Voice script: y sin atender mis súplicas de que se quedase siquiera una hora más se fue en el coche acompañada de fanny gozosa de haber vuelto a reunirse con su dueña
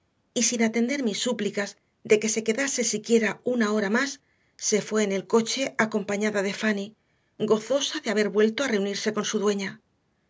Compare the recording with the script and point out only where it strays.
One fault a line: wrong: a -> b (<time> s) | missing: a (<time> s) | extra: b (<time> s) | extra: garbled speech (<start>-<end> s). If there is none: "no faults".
no faults